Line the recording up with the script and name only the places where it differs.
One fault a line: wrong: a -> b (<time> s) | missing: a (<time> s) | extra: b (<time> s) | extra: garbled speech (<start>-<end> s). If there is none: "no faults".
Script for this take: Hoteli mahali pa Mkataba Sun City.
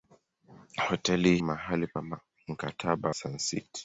no faults